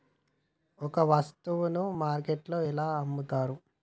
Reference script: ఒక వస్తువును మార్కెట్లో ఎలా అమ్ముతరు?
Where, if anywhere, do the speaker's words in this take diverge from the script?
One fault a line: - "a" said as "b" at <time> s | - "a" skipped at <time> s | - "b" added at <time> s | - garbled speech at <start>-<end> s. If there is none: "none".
none